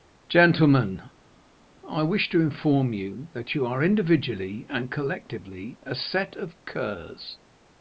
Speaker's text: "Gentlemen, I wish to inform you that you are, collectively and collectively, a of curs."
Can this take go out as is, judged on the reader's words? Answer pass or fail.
fail